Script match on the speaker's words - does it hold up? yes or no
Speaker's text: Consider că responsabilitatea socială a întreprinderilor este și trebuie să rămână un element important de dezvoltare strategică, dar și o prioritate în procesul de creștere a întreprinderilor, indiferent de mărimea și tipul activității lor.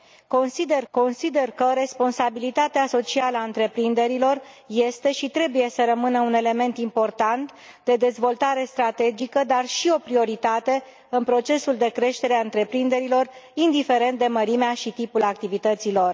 no